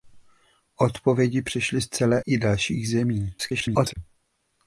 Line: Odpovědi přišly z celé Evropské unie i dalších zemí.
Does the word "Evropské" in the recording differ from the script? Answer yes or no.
yes